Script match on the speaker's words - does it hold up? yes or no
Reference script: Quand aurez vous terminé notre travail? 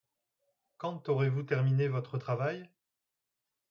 no